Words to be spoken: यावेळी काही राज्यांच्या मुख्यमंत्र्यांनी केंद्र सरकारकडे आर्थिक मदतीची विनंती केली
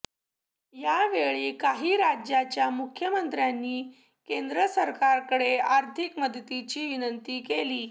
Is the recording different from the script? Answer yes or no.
no